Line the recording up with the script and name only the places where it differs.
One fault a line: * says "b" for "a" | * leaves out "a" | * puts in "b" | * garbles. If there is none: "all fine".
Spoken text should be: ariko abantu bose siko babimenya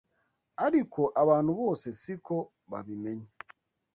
all fine